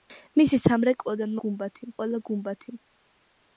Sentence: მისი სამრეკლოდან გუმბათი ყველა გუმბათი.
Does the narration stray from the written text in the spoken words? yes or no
no